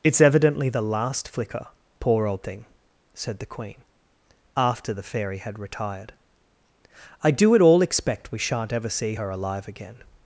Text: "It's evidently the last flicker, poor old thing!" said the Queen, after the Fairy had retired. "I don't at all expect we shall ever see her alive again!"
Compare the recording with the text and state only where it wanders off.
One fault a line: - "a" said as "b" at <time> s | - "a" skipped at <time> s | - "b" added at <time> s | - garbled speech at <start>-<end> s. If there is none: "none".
- "don't" said as "do" at 7.3 s
- "shall" said as "shan't" at 8.4 s